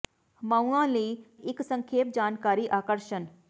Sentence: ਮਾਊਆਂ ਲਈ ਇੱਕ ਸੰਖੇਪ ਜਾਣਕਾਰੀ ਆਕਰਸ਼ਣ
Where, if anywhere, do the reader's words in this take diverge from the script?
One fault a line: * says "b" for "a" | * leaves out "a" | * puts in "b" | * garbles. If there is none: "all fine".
all fine